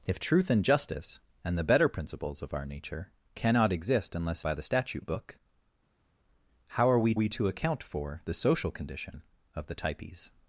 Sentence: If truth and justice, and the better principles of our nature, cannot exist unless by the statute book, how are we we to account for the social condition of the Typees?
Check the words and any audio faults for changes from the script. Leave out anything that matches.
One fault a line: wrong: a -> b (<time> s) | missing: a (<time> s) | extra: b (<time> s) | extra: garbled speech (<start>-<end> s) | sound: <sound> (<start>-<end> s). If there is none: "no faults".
no faults